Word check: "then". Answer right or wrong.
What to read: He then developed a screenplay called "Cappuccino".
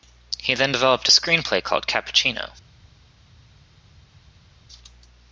right